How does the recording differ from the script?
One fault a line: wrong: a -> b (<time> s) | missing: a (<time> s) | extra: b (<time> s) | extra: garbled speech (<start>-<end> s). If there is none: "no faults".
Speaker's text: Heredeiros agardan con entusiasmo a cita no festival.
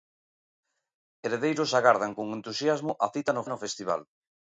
extra: no (3.5 s)